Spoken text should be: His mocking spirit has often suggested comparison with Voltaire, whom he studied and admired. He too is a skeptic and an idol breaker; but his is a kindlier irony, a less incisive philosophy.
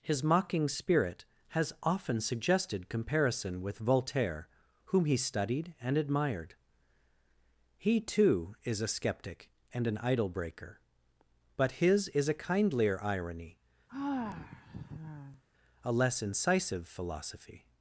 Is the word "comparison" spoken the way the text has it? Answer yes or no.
yes